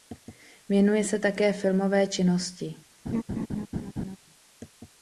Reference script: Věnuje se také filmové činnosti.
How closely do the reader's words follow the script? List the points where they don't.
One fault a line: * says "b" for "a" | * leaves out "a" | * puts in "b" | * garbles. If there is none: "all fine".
all fine